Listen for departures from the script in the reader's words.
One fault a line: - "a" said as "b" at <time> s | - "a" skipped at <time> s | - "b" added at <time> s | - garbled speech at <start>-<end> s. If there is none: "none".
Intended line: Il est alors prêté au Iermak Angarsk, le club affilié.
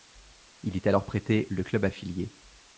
- "au Iermak Angarsk" skipped at 1.4 s